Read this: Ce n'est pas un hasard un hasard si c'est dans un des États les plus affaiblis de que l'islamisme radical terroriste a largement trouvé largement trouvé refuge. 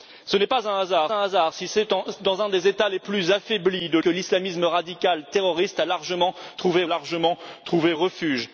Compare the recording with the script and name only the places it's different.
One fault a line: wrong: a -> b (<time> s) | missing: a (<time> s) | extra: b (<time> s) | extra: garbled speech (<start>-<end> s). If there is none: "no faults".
no faults